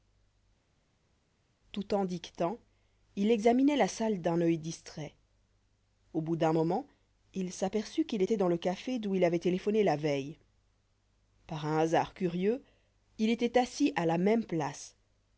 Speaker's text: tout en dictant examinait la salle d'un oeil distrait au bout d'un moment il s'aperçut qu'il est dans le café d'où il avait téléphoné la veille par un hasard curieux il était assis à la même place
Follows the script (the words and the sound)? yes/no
no